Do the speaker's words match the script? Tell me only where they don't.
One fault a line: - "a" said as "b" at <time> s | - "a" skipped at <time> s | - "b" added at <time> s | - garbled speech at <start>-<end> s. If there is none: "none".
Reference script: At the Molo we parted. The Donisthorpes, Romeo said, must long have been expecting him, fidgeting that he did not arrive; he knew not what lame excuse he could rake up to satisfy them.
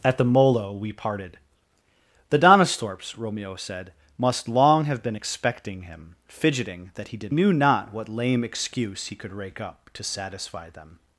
- "not arrive he" skipped at 7.3 s